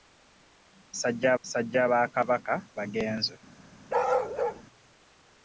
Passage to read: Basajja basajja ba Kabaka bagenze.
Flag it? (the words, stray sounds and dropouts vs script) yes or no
yes